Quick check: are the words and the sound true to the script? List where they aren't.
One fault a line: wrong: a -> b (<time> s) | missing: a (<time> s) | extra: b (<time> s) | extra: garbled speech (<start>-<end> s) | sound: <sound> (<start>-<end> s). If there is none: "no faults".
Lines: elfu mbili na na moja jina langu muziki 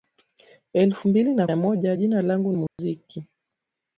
sound: dropout (2.7-2.8 s)